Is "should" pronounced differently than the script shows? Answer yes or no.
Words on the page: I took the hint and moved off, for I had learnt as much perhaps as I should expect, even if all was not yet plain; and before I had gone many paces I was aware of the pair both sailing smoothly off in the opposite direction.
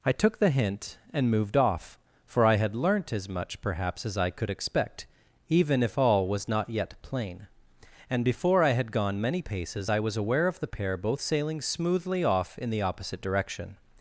yes